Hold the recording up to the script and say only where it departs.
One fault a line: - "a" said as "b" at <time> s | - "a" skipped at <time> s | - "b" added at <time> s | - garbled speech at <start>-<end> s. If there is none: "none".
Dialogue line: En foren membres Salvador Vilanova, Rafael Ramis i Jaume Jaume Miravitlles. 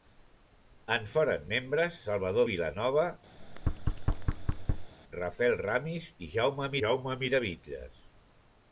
none